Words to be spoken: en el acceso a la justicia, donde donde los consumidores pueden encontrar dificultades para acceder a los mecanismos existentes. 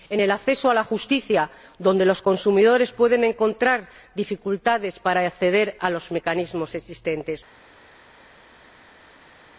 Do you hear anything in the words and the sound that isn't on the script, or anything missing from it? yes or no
yes